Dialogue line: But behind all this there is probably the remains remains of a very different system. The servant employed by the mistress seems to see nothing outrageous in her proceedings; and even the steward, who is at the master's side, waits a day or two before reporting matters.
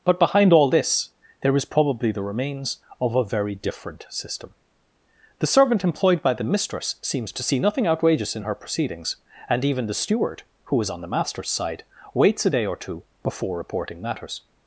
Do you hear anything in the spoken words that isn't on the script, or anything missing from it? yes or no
yes